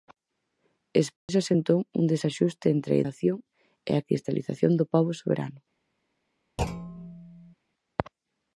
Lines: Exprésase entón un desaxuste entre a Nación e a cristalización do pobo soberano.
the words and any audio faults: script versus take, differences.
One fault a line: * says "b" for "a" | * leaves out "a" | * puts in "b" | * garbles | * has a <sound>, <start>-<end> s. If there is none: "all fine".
* has a dropout, 1.2-1.3 s
* has a thud, 6.6-7.5 s